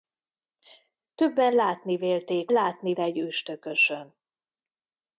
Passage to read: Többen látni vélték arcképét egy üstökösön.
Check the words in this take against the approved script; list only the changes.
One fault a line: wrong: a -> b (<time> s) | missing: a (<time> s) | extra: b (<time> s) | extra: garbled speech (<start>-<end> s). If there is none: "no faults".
wrong: arcképét -> látni (2.5 s)